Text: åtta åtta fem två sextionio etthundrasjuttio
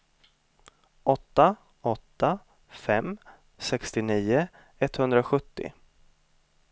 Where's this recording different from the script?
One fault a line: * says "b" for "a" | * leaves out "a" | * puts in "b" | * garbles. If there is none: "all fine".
* leaves out "två"